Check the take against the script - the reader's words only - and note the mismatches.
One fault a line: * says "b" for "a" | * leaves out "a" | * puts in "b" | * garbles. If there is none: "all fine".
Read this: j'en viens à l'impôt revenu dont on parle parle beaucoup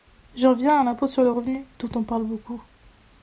* puts in "sur le"
* leaves out "parle"